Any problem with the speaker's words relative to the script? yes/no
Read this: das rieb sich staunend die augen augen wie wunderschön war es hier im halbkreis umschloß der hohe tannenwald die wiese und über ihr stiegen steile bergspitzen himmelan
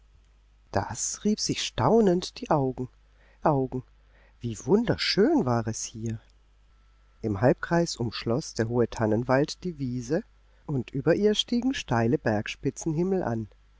no